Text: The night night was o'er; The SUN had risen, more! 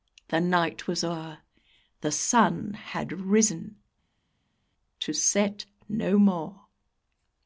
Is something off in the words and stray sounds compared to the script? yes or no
yes